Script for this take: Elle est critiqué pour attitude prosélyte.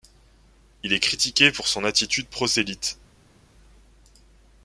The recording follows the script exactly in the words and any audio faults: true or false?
false